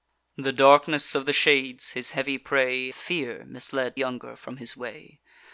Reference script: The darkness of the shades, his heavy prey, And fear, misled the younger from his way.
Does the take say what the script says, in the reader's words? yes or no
no